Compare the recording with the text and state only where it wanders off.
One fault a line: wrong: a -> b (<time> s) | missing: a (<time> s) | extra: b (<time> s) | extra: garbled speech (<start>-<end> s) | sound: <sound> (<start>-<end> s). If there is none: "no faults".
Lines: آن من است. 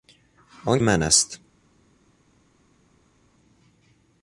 no faults